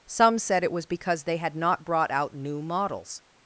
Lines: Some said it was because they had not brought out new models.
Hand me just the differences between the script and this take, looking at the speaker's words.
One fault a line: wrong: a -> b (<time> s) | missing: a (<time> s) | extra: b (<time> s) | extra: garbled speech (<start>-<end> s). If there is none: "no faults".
no faults